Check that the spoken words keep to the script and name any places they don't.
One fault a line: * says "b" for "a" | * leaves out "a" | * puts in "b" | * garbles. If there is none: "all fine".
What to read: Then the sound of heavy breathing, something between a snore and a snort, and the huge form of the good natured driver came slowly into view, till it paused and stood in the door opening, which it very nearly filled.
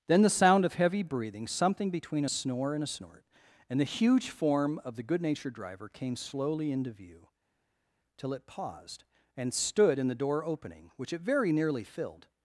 all fine